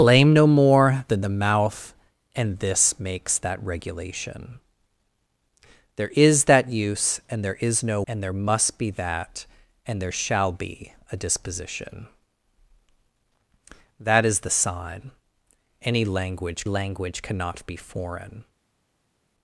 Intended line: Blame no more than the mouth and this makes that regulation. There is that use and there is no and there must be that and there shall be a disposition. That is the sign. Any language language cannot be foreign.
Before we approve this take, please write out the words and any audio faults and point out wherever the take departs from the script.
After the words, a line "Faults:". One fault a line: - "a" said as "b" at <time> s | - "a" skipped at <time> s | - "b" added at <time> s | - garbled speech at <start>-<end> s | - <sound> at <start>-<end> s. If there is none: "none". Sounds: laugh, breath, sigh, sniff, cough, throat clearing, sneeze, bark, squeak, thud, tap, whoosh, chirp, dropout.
Blame no more than the mouth and this makes that regulation. There is that use and there is no and there must be that and there shall be a disposition. That is the sign. Any language language cannot be foreign.
Faults:
none